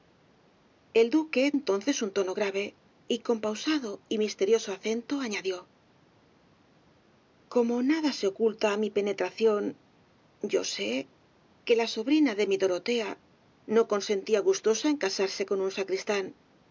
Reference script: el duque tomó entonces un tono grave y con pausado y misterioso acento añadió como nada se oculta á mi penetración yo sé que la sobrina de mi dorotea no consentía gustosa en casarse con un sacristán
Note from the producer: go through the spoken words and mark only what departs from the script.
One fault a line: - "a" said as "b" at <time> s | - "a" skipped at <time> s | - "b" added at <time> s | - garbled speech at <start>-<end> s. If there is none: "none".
- "tomó" skipped at 1.5 s